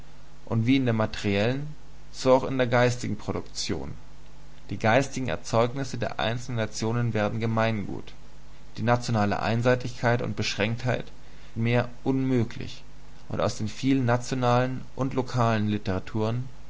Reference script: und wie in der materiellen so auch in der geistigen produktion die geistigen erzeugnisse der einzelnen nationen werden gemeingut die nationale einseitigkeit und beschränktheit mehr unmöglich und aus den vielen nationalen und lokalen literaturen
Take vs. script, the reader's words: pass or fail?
pass